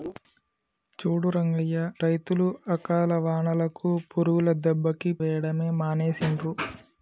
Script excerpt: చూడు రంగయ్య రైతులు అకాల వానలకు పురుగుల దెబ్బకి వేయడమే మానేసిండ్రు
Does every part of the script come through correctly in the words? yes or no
yes